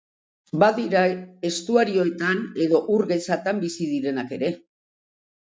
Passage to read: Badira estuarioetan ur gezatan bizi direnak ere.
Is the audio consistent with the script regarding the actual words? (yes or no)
no